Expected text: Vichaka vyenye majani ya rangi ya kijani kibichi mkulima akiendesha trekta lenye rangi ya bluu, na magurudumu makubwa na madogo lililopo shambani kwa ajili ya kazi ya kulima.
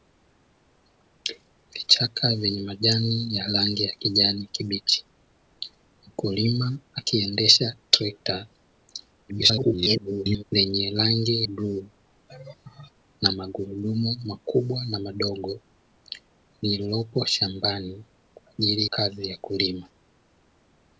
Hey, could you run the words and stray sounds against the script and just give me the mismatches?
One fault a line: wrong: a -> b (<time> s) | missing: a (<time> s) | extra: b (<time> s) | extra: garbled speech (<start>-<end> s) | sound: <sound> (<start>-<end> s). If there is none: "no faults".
extra: garbled speech (9.3-10.4 s)
missing: ya (11.5 s)
sound: laugh (12.3-12.9 s)
missing: ya (18.9 s)